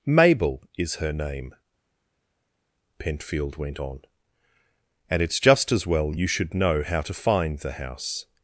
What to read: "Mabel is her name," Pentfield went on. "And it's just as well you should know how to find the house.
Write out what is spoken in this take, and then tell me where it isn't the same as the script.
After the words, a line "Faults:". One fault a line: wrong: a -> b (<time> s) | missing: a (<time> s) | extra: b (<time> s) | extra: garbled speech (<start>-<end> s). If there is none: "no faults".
"Mabel is her name," Pentfield went on. "And it's just as well you should know how to find the house.
Faults:
no faults